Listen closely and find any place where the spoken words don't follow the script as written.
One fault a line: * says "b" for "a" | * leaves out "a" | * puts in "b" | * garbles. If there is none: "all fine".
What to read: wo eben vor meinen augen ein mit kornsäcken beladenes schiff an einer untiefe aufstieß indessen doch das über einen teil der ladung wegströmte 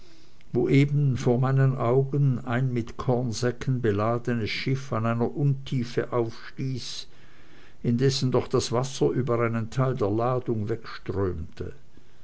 * puts in "wasser"